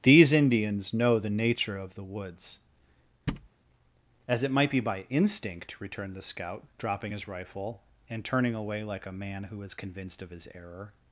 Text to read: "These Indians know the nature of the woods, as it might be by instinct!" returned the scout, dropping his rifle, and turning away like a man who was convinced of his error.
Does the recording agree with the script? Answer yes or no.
no